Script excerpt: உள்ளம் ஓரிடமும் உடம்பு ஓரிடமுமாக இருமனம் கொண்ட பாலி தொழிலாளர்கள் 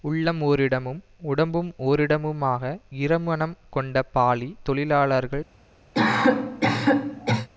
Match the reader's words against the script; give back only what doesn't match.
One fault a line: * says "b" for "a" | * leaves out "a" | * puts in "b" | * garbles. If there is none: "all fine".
all fine